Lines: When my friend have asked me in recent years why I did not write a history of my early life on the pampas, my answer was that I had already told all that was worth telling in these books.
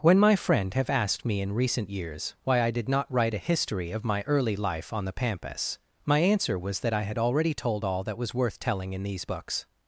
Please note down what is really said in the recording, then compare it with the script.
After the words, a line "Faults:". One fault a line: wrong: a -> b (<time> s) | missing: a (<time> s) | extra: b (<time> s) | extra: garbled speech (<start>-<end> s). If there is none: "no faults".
When my friend have asked me in recent years why I did not write a history of my early life on the pampas, my answer was that I had already told all that was worth telling in these books.
Faults:
no faults